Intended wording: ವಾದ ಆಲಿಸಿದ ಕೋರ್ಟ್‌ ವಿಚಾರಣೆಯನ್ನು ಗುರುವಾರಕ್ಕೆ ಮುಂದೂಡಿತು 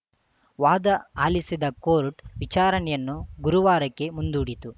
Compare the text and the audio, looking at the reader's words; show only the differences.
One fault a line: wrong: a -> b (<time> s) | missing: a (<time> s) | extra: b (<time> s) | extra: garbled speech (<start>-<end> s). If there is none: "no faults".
no faults